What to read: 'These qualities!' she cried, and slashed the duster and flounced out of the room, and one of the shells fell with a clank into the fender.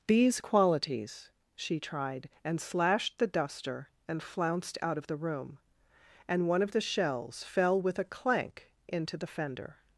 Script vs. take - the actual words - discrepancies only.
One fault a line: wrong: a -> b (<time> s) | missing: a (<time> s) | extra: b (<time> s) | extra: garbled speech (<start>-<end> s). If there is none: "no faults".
wrong: cried -> tried (1.8 s)